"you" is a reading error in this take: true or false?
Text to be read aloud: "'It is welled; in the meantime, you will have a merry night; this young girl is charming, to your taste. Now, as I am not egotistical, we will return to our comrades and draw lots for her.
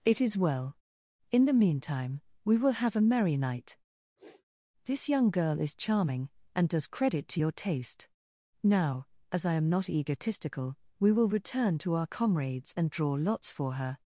true